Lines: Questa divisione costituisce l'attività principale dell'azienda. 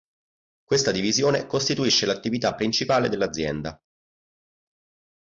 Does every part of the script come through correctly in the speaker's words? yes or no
yes